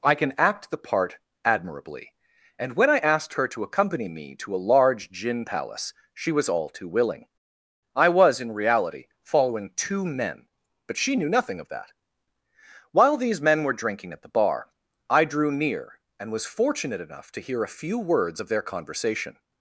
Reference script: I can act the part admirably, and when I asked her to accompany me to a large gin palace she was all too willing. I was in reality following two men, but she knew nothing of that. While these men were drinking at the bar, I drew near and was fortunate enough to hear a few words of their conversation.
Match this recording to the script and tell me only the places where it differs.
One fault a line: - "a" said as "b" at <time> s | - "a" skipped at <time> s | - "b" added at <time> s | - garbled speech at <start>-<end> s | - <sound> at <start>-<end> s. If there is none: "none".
none